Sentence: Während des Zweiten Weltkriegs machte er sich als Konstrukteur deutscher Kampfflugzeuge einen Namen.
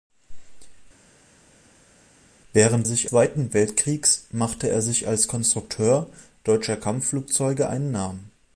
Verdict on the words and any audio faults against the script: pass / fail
fail